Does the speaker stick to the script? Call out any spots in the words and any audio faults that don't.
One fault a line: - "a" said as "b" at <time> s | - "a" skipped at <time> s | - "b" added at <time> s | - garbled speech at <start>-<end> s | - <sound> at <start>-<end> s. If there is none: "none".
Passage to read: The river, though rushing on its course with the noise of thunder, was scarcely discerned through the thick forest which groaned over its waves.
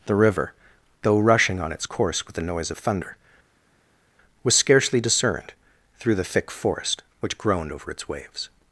none